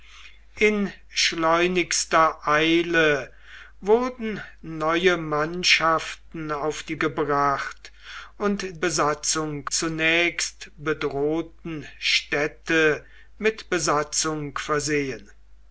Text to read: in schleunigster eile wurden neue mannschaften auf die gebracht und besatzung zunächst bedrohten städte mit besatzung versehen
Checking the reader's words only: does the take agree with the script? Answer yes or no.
yes